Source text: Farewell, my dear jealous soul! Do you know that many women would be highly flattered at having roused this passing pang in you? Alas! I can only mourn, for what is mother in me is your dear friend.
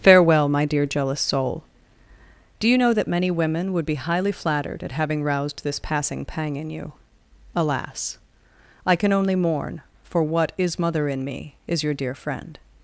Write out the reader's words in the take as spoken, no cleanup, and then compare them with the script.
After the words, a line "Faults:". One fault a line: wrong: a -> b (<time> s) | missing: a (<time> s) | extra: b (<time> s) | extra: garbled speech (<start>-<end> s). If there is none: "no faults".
Farewell, my dear jealous soul! Do you know that many women would be highly flattered at having roused this passing pang in you? Alas! I can only mourn, for what is mother in me is your dear friend.
Faults:
no faults